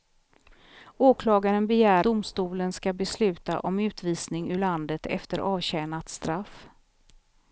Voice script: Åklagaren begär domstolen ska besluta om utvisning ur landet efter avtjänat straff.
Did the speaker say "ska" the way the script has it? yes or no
yes